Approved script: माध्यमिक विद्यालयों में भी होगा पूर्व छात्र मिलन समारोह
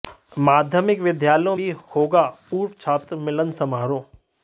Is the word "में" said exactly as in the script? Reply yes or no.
no